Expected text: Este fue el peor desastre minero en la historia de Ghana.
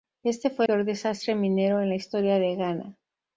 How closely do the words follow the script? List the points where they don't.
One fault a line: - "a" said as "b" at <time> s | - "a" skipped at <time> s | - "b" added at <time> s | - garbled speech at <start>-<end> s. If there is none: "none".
- "el" skipped at 0.7 s